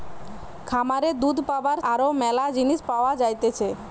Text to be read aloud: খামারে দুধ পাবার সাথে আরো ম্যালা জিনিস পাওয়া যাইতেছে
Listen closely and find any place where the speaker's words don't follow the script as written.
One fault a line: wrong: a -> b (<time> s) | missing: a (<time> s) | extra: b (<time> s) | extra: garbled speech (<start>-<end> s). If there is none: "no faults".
missing: সাথে (1.8 s)